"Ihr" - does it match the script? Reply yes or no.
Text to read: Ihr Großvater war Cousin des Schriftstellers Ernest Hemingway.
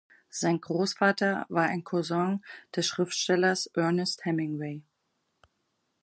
no